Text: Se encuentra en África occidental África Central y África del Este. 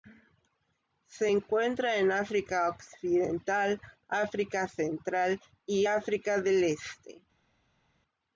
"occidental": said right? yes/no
yes